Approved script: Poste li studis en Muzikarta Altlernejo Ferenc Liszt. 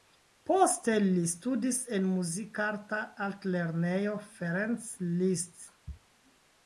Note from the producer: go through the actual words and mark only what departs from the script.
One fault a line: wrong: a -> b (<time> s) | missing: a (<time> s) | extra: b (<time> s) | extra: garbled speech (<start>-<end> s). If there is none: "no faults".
no faults